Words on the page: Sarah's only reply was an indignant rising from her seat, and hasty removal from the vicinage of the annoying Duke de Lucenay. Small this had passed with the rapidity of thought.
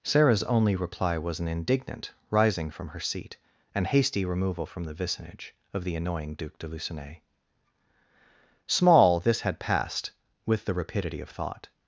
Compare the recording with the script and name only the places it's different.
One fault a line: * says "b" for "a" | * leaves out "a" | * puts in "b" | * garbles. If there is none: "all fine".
all fine